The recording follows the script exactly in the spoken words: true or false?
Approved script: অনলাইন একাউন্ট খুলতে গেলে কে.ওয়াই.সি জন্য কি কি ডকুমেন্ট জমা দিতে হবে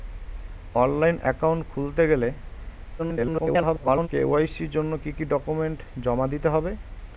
false